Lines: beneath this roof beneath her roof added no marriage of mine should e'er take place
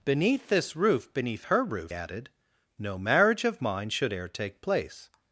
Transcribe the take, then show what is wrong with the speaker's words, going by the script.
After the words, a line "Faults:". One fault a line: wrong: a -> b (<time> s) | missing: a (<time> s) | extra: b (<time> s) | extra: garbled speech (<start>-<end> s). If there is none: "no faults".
beneath this roof beneath her roof added no marriage of mine should e'er take place
Faults:
no faults